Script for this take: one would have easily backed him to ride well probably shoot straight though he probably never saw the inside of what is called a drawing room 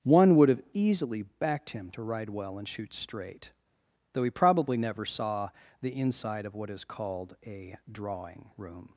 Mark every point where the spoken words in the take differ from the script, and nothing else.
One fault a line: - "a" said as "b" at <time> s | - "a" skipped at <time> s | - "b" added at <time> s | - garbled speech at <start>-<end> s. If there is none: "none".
- "probably" said as "and" at 2.6 s